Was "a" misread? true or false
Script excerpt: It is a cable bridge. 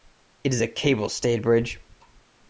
false